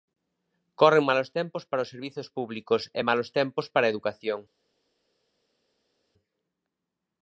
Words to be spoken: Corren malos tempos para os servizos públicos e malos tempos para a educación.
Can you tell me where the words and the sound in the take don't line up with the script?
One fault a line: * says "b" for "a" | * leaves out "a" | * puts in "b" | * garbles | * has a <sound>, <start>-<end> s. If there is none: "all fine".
all fine